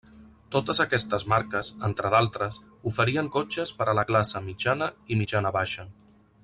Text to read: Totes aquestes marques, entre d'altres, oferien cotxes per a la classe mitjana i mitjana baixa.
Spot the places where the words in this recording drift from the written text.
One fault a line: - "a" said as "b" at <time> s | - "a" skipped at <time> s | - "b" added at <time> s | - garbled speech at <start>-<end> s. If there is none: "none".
none